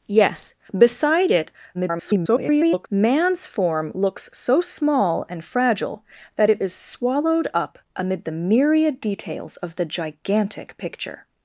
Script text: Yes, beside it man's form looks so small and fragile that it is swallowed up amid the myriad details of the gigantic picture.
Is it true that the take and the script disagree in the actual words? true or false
true